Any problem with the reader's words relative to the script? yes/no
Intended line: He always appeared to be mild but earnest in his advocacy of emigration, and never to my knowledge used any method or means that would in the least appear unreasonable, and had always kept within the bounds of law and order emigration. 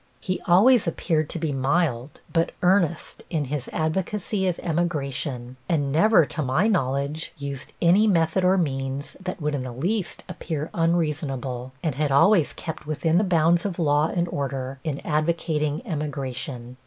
yes